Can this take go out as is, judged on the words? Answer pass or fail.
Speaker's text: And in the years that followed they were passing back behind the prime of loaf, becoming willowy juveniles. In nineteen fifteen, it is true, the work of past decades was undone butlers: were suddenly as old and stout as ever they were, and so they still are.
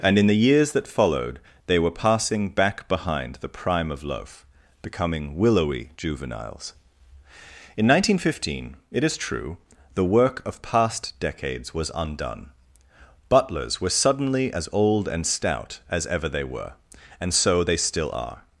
pass